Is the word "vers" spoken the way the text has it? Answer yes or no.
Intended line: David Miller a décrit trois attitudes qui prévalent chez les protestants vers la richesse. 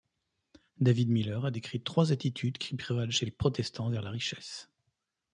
yes